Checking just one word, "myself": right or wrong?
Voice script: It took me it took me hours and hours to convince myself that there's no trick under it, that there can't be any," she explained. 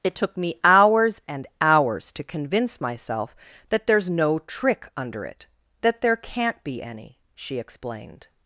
right